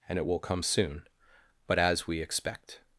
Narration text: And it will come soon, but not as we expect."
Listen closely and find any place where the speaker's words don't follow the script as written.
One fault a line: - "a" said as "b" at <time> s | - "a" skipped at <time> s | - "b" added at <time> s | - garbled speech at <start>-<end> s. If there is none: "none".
- "not" skipped at 1.8 s